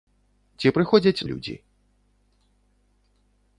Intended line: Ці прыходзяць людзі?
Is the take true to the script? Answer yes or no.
yes